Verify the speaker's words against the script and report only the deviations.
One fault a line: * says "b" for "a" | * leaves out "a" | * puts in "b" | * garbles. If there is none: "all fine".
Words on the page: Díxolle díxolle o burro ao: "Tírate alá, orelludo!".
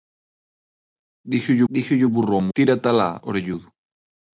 all fine